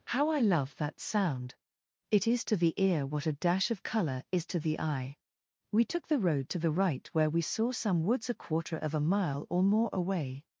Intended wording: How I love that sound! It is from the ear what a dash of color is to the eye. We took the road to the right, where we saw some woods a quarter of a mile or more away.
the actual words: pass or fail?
fail